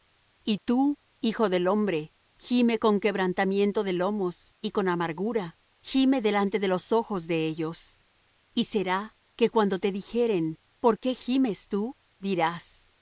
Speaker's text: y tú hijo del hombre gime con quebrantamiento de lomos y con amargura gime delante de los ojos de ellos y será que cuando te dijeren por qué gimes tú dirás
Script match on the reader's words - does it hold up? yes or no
yes